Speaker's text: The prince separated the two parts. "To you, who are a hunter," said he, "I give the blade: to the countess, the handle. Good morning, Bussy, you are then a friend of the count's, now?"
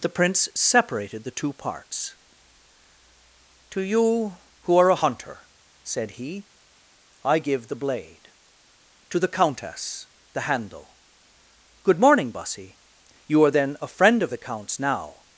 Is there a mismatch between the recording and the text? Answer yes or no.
no